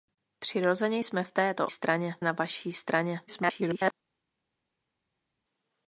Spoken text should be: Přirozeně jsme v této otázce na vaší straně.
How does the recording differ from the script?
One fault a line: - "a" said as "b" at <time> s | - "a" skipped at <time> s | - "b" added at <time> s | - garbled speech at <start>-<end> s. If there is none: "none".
- "otázce" said as "straně" at 1.7 s
- garbled speech at 3.3-3.9 s